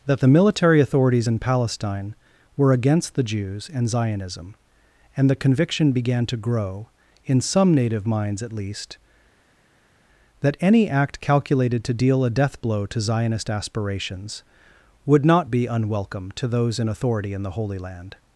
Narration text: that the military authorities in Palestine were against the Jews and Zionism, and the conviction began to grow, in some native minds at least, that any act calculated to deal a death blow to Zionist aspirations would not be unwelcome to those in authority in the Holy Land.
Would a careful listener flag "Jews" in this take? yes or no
no